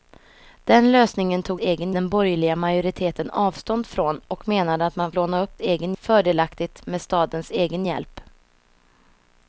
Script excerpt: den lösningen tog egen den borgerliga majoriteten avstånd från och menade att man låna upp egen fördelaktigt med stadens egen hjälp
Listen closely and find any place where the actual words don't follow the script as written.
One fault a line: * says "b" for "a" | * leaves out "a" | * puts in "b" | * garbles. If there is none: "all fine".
all fine